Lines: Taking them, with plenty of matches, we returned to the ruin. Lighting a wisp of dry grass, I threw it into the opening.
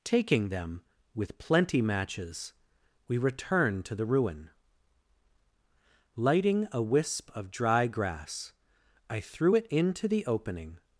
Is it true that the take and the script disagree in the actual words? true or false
true